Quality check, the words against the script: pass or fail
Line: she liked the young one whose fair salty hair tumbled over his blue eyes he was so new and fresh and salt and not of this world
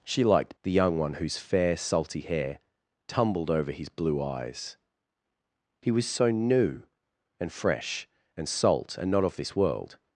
pass